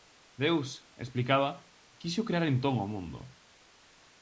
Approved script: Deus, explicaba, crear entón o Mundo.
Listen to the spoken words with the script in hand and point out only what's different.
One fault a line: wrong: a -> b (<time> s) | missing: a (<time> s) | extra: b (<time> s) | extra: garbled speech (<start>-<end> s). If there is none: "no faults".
extra: quixo (2.0 s)